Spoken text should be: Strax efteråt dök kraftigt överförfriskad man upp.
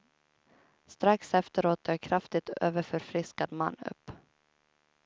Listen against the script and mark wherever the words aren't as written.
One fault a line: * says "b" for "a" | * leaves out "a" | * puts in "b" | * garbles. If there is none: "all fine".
all fine